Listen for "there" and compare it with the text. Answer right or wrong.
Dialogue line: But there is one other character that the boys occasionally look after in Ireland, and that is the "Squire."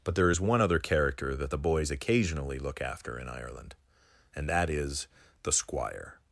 right